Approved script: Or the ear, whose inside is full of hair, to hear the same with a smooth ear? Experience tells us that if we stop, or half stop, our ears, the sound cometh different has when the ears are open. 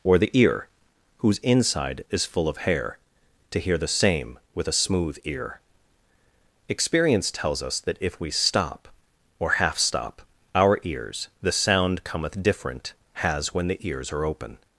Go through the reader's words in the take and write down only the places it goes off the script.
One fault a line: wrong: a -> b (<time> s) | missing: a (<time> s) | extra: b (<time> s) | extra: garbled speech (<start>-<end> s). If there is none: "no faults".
no faults